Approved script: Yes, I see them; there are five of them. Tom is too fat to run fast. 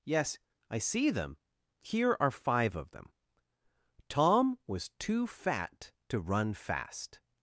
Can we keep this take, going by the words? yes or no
no